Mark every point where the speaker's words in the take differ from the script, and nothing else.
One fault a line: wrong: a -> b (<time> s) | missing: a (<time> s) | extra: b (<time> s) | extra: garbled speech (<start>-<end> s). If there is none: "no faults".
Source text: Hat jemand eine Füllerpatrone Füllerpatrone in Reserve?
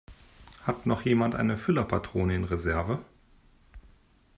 extra: noch (0.9 s)
missing: Füllerpatrone (2.4 s)